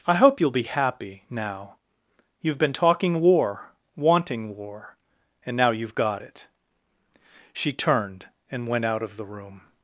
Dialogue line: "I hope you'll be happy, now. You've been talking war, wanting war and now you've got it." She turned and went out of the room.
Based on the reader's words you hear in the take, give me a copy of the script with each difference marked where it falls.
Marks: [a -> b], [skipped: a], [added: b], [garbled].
"I hope you'll be happy, now. You've been talking war, wanting war and now you've got it." She turned and went out of the room.